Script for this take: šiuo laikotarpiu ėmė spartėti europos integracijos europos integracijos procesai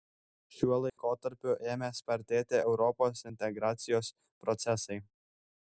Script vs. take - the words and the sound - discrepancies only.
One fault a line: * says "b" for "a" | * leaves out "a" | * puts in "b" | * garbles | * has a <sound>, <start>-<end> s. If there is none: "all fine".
* has a dropout, 0.9-1.0 s
* leaves out "europos integracijos"